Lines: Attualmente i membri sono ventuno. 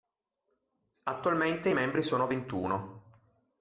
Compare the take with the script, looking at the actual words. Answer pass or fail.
pass